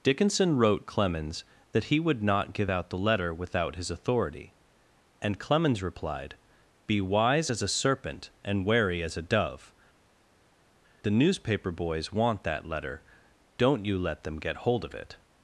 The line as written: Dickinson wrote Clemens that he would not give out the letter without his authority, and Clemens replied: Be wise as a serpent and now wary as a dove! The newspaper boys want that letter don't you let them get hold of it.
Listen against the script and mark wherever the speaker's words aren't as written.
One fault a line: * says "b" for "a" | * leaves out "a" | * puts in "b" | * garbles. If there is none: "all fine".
* leaves out "now"